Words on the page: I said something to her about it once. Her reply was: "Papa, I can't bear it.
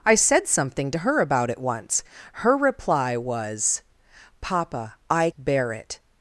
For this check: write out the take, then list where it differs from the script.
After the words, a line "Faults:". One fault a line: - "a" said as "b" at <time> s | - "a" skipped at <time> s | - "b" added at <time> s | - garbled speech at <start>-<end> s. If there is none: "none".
I said something to her about it once. Her reply was: "Papa, I bear it.
Faults:
- "can't" skipped at 5.3 s